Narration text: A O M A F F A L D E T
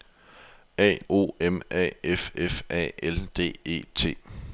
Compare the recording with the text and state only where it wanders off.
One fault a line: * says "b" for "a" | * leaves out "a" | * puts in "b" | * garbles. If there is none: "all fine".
all fine